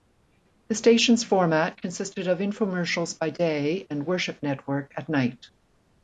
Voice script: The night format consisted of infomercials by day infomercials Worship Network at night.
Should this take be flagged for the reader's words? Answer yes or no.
yes